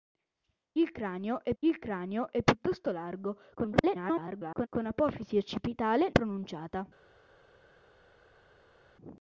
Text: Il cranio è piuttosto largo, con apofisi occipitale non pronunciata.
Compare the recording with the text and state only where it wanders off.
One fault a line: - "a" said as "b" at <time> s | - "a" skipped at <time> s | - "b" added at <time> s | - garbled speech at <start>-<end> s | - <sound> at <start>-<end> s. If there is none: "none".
- "il cranio è" added at 1.6 s
- garbled speech at 3.5-4.7 s
- "non" skipped at 6.1 s